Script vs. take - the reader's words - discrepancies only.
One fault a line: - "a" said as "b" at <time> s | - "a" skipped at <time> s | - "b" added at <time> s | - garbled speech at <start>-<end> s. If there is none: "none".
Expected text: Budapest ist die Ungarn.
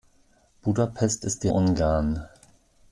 none